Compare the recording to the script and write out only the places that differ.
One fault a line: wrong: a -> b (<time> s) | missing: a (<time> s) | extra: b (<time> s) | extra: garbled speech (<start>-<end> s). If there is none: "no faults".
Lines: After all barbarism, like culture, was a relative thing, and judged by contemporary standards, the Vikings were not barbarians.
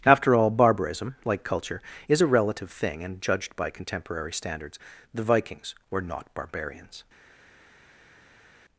wrong: was -> is (2.1 s)